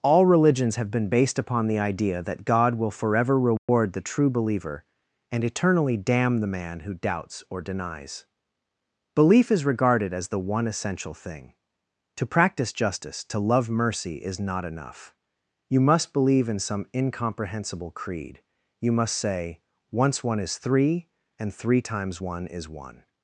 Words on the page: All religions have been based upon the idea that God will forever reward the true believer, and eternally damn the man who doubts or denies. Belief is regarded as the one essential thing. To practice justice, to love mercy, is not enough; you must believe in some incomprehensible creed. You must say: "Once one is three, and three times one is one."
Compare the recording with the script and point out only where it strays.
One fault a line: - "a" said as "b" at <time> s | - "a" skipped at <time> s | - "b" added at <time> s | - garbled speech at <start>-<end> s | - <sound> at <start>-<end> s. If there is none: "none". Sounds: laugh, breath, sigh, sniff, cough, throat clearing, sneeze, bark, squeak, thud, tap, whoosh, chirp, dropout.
- dropout at 3.6-3.7 s